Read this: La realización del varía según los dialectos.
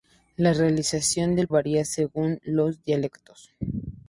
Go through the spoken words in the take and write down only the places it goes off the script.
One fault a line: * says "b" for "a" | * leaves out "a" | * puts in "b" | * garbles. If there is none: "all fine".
all fine